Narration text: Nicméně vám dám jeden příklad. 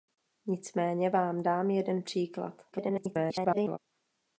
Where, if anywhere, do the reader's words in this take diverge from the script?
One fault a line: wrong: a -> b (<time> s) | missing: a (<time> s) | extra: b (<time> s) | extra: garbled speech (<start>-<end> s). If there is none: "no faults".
extra: garbled speech (2.7-3.8 s)